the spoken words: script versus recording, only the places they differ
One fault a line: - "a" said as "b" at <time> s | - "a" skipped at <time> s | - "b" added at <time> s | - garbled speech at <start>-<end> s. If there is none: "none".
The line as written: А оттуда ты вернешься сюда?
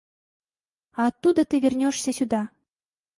none